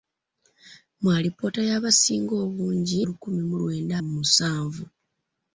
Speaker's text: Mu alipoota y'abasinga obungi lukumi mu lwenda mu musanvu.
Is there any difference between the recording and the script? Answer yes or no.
no